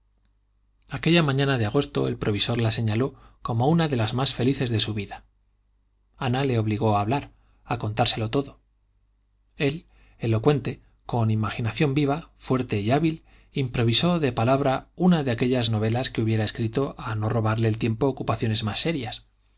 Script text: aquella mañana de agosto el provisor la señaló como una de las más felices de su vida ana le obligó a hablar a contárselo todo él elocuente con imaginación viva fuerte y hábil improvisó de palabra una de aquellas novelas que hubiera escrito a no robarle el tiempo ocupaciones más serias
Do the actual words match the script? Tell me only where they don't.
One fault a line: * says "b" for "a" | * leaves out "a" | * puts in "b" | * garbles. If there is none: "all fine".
all fine